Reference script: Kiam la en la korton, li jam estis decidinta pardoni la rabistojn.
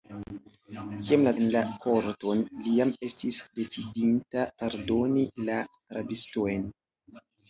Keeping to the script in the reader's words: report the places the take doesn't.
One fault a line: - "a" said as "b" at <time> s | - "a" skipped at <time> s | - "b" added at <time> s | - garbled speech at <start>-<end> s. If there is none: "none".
none